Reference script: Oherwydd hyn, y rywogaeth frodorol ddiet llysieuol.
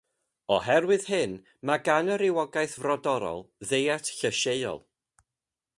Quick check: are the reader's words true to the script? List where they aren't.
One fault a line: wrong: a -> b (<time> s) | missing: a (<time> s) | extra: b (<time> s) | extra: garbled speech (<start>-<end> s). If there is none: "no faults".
extra: mae gan (1.7 s)